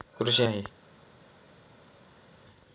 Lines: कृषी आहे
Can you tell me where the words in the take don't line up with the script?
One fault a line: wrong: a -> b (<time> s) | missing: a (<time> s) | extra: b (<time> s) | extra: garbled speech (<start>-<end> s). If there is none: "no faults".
no faults